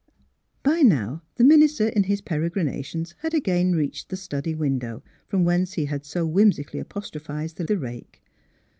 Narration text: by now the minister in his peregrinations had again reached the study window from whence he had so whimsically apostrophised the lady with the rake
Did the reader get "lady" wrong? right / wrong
wrong